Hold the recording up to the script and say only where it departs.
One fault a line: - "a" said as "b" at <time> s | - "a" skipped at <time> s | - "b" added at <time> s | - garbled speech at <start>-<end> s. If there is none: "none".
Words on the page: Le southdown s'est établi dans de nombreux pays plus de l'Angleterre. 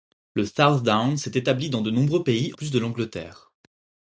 none